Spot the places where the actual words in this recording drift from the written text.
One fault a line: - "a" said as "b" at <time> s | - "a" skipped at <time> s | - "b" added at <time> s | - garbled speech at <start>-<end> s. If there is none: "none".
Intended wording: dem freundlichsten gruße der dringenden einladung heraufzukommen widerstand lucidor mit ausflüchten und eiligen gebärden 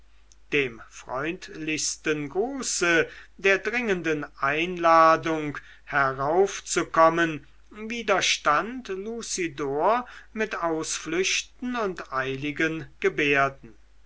none